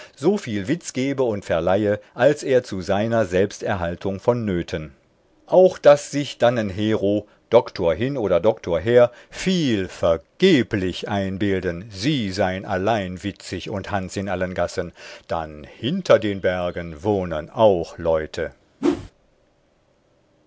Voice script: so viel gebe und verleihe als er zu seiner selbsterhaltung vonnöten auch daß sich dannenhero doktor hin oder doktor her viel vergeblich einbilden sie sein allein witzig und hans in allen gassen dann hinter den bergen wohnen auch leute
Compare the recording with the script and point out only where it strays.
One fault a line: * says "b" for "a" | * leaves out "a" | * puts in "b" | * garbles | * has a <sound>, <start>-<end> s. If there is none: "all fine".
* puts in "witz"
* has a whoosh, 18.8-19.1 s